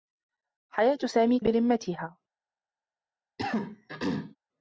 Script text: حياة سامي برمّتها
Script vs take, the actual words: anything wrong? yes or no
no